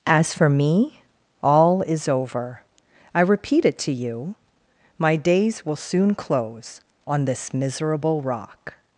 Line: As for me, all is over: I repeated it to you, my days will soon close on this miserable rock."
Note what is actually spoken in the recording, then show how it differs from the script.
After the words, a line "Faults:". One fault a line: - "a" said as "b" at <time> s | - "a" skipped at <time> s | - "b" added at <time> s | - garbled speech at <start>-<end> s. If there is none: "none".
As for me, all is over: I repeat it to you, my days will soon close on this miserable rock."
Faults:
- "repeated" said as "repeat" at 3.2 s